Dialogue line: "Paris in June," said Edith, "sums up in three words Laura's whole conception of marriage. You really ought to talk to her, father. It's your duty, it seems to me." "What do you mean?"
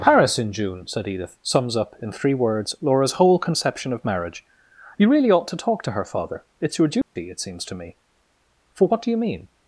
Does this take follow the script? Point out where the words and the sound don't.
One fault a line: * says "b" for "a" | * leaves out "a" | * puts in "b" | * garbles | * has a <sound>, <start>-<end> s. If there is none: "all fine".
* has a dropout, 7.0-7.2 s
* puts in "for"